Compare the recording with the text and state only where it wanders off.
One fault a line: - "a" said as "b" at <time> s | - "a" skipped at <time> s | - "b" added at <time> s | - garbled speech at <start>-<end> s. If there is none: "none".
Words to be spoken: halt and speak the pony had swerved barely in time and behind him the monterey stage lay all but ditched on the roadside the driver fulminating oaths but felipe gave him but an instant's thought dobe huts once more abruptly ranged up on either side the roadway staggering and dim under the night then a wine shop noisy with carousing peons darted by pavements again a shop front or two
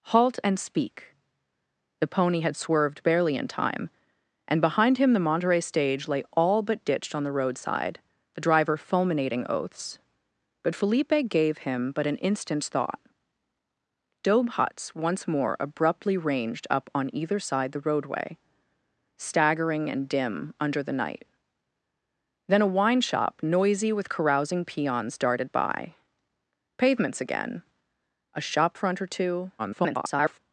- garbled speech at 29.6-30.4 s